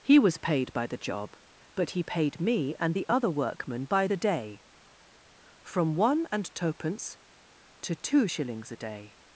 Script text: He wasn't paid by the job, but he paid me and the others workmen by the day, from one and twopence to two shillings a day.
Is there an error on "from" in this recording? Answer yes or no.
no